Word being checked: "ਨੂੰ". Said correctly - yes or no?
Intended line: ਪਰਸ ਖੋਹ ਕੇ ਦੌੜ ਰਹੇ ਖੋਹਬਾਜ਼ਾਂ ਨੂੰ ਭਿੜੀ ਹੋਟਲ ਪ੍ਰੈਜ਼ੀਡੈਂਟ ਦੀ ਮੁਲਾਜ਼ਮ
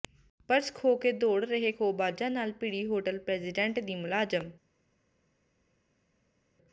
no